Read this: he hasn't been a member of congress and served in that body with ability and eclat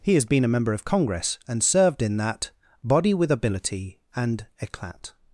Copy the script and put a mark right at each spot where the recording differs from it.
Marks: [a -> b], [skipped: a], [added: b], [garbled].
he [hasn't -> has] been a member of congress and served in that body with ability and eclat